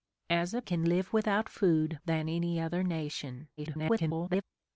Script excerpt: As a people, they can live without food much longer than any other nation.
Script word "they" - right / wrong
wrong